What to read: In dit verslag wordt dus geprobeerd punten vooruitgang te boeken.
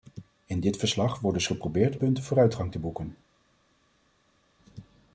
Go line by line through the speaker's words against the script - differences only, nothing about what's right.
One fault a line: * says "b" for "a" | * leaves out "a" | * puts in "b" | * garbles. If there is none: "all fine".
all fine